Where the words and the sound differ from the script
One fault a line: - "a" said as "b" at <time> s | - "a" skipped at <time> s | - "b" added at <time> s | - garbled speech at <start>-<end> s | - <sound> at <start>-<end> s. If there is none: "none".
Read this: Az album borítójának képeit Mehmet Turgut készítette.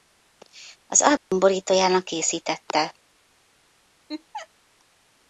- dropout at 1.2-1.3 s
- "képeit Mehmet Turgut" skipped at 2.1 s
- laugh at 4.1-4.5 s